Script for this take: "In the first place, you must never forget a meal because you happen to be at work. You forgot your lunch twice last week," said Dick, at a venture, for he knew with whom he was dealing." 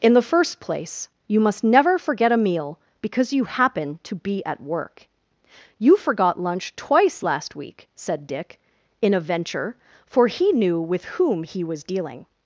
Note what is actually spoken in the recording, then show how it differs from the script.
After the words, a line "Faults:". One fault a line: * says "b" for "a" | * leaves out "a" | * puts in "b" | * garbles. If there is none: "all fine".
"In the first place, you must never forget a meal because you happen to be at work. You forgot lunch twice last week," said Dick, in a venture, for he knew with whom he was dealing."
Faults:
* leaves out "your"
* says "in" for "at"